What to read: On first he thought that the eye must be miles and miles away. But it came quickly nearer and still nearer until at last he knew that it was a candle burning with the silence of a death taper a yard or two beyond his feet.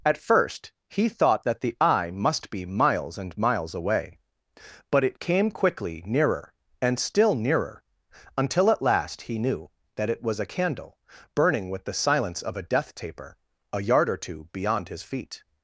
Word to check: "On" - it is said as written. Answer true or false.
false